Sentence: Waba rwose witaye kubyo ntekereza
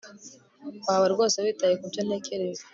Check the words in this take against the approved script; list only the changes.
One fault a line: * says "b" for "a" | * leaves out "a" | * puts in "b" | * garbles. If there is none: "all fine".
all fine